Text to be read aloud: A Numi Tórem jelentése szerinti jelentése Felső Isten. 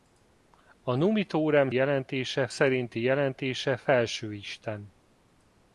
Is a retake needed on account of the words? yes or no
no